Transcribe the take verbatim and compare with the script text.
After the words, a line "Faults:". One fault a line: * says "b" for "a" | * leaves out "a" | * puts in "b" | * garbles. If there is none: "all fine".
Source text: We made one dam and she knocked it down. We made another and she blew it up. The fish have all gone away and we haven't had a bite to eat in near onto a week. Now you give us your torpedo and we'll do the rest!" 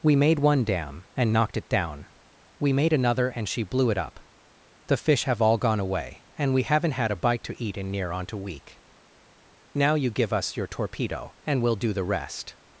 We made one dam and knocked it down. We made another and she blew it up. The fish have all gone away and we haven't had a bite to eat in near onto a week. Now you give us your torpedo and we'll do the rest!"
Faults:
* leaves out "she"